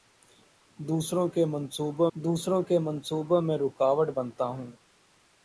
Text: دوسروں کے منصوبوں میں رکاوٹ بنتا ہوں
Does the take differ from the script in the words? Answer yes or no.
yes